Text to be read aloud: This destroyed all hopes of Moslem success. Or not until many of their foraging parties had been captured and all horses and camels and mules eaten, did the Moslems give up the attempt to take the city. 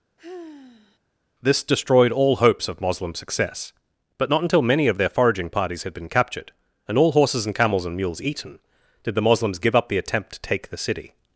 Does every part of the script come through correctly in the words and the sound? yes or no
no